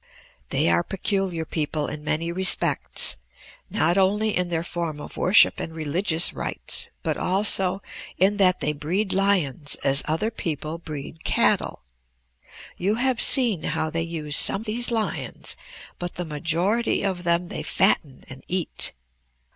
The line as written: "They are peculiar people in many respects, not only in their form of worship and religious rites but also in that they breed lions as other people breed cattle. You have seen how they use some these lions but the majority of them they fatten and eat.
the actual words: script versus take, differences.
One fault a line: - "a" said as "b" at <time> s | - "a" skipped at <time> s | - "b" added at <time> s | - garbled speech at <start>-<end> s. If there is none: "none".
none